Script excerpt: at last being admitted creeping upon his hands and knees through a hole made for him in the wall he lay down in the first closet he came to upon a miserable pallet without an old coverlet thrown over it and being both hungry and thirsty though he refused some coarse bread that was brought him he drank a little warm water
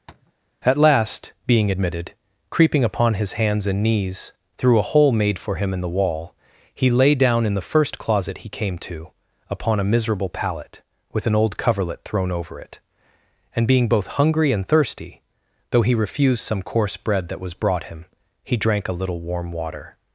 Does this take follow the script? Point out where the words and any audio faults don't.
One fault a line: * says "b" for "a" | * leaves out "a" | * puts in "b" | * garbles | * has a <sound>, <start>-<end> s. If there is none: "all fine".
* has a tap, 0.1-0.3 s
* says "with" for "without"